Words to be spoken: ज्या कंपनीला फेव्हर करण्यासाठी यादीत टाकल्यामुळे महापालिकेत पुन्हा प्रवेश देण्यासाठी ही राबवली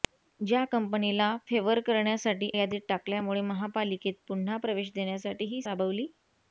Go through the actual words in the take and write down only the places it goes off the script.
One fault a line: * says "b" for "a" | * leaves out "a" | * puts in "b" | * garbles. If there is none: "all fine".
all fine